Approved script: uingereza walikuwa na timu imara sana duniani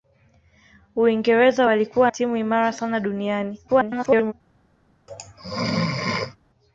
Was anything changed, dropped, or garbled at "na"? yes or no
yes